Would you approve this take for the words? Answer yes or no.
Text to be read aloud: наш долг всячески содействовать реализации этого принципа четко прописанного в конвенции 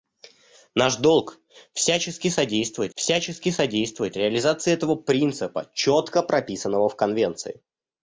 no